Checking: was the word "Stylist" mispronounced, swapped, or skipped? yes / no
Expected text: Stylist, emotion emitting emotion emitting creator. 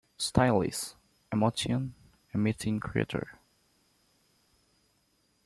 no